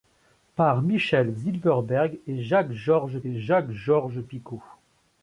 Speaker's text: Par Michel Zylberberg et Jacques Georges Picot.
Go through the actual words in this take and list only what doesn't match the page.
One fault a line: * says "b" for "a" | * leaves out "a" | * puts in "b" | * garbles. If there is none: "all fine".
* puts in "et Jacques Georges"